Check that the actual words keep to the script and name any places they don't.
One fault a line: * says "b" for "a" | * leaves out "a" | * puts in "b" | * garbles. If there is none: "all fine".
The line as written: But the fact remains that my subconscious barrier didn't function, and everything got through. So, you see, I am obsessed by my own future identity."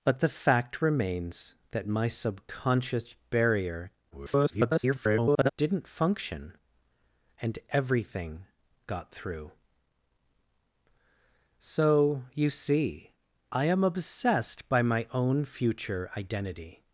* garbles